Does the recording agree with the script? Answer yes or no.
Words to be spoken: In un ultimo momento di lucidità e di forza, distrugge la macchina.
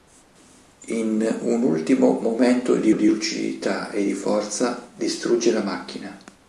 no